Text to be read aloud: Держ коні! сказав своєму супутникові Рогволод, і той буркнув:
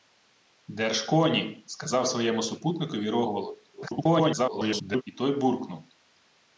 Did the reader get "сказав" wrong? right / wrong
right